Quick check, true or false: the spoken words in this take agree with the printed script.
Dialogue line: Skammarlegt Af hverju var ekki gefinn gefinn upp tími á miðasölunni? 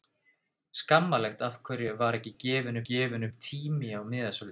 true